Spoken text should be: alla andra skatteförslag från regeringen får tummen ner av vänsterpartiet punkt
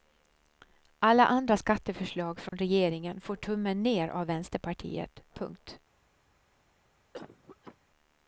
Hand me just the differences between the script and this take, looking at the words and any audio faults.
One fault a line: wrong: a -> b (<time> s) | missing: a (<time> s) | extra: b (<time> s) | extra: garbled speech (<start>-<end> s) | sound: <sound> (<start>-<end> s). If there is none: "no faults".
sound: dropout (2.5-2.5 s)
sound: cough (7.1-7.8 s)